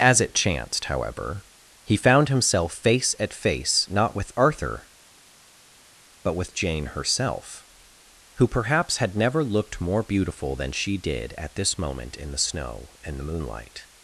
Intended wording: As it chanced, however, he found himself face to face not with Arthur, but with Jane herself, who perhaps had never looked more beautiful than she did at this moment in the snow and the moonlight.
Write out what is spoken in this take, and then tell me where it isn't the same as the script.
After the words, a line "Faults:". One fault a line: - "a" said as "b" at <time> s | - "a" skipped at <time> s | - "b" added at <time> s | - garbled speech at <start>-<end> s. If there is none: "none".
As it chanced, however, he found himself face at face not with Arthur, but with Jane herself, who perhaps had never looked more beautiful than she did at this moment in the snow and the moonlight.
Faults:
- "to" said as "at" at 3.2 s